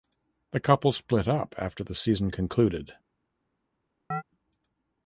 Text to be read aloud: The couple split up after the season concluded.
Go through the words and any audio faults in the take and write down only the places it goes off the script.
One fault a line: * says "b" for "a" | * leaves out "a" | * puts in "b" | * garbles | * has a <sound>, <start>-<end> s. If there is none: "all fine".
* has a chirp, 4.1-4.2 s